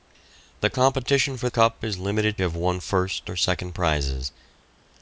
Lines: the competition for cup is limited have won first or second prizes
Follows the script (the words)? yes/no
yes